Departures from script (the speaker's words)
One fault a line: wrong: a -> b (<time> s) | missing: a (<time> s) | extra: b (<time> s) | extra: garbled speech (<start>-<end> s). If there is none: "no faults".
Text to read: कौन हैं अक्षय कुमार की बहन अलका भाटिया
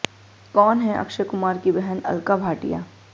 no faults